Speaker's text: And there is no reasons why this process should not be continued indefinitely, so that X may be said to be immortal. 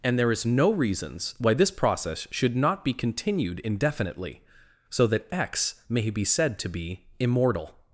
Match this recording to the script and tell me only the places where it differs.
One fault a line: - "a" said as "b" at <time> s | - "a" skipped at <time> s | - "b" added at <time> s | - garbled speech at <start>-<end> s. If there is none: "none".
none